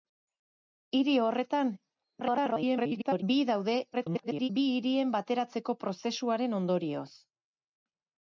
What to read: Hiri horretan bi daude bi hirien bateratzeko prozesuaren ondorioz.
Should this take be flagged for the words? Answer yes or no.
yes